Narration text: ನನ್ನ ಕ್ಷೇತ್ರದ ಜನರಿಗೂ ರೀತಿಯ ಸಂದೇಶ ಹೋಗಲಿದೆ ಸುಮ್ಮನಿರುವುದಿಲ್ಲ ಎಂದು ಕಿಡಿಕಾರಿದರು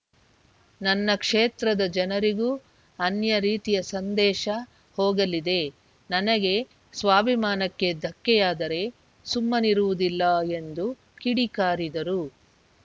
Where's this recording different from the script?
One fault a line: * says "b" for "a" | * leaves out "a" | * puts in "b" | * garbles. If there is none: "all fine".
* puts in "ಅನ್ಯ"
* puts in "ನನಗೆ ಸ್ವಾಭಿಮಾನಕ್ಕೆ ಧಕ್ಕೆಯಾದರೆ"